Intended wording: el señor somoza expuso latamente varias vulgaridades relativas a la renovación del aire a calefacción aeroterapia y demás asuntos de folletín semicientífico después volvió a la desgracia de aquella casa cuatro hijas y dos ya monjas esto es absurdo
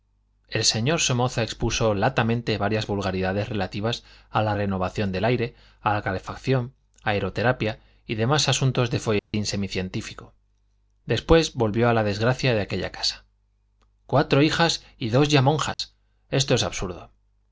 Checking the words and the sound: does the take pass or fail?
fail